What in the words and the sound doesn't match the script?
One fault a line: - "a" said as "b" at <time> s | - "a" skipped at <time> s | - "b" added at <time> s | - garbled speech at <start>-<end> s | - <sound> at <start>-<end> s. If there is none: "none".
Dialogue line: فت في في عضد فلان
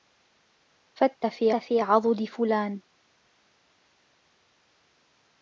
none